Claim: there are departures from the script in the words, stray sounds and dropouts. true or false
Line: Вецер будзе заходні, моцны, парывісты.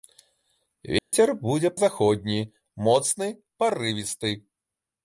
true